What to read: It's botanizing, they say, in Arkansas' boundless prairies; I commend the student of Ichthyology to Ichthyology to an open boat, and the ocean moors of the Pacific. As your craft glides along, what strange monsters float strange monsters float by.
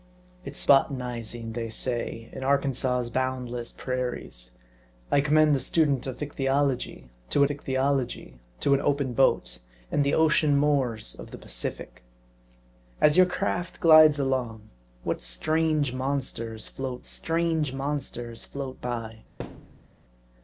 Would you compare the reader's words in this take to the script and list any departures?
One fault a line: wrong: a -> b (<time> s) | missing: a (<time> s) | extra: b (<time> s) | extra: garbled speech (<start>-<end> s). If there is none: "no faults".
no faults